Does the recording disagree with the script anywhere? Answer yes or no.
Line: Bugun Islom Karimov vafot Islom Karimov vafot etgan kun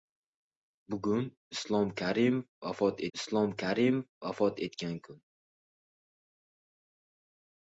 no